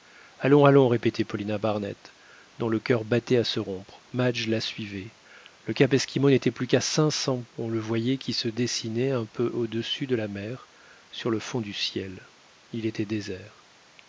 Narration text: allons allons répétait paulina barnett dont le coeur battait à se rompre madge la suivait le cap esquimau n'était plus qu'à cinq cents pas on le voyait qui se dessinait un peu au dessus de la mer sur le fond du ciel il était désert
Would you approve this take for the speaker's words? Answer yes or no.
no